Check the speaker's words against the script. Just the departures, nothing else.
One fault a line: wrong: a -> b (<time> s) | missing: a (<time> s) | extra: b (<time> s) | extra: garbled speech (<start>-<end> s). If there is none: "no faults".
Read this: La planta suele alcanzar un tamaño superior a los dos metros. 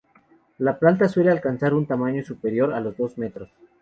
no faults